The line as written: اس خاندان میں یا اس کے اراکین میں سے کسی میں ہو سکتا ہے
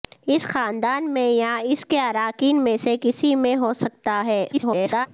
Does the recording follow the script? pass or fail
fail